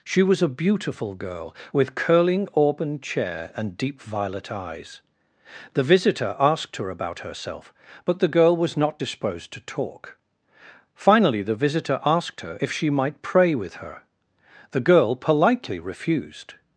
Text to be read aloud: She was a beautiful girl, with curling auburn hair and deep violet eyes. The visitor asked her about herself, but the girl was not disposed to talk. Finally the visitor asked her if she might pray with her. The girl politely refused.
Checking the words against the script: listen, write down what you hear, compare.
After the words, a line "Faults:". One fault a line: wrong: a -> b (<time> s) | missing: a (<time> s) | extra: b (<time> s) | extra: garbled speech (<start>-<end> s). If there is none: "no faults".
She was a beautiful girl, with curling auburn chair and deep violet eyes. The visitor asked her about herself, but the girl was not disposed to talk. Finally the visitor asked her if she might pray with her. The girl politely refused.
Faults:
wrong: hair -> chair (3.0 s)